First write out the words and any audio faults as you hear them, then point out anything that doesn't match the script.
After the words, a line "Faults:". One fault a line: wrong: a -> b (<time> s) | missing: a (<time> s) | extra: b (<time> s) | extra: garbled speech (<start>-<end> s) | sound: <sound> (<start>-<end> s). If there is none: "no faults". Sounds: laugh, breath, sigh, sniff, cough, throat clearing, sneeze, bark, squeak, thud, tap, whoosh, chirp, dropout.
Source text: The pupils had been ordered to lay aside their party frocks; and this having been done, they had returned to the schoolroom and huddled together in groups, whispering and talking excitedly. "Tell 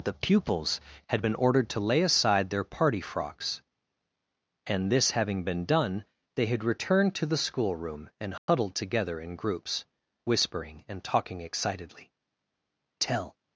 The pupils had been ordered to lay aside their party frocks; and this having been done, they had returned to the schoolroom and huddled together in groups, whispering and talking excitedly. "Tell
Faults:
sound: dropout (8.4-8.5 s)